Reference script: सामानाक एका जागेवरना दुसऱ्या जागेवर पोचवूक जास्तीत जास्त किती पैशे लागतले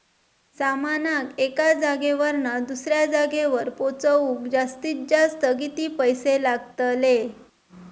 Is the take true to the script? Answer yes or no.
yes